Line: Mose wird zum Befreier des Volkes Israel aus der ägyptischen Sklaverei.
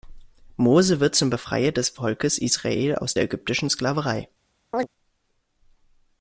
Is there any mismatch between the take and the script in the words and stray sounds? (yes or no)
yes